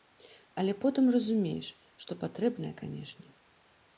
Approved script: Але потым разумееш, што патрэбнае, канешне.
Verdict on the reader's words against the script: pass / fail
pass